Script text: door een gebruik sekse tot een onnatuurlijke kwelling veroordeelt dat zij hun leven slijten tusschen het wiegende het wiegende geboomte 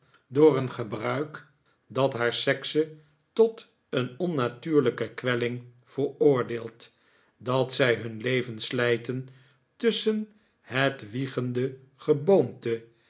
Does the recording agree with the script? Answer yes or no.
no